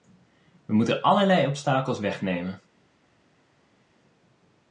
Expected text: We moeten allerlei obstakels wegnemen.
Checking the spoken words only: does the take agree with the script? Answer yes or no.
yes